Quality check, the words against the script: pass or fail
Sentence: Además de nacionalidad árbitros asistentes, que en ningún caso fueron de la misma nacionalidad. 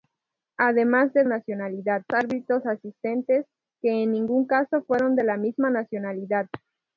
pass